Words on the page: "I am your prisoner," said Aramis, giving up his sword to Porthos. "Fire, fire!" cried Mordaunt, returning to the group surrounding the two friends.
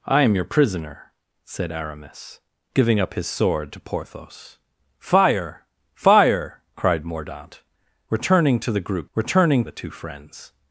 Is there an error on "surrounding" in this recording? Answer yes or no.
yes